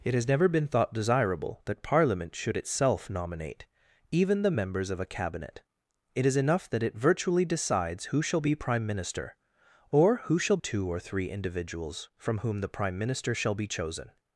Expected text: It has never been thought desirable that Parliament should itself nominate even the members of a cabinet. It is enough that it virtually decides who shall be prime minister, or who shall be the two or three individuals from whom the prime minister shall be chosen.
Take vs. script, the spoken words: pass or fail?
fail